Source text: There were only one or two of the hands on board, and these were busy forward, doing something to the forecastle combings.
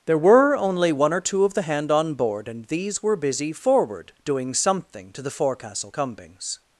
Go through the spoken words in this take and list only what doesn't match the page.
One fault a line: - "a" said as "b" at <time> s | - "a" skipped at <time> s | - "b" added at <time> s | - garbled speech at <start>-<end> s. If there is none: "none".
- "hands" said as "hand" at 1.6 s